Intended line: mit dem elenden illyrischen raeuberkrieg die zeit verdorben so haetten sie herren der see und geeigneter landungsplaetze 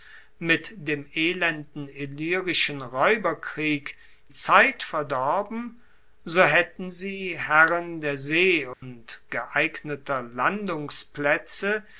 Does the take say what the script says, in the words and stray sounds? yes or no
no